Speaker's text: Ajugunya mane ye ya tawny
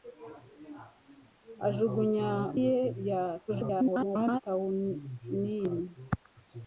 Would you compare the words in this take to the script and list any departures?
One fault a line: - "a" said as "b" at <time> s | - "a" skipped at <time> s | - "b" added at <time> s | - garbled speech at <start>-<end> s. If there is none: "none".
- "mane" skipped at 2.3 s
- garbled speech at 3.5-4.4 s